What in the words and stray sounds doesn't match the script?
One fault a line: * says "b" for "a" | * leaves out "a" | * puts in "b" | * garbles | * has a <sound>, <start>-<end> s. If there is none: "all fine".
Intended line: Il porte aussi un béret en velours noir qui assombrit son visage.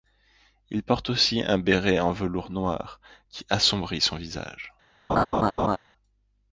* has a laugh, 5.1-5.8 s